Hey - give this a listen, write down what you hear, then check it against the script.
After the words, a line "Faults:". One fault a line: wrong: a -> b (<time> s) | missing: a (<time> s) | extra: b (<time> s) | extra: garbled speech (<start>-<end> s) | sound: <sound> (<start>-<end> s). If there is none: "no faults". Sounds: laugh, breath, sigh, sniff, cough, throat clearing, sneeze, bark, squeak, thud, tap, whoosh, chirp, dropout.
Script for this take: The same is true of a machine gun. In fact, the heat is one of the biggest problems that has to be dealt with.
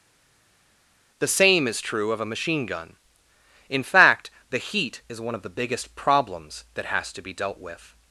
The same is true of a machine gun. In fact, the heat is one of the biggest problems that has to be dealt with.
Faults:
no faults